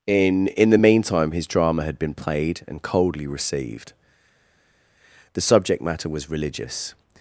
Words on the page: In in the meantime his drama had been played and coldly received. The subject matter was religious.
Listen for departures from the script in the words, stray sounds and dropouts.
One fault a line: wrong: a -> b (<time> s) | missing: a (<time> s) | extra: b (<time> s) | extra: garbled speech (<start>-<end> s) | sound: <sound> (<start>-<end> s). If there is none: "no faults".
no faults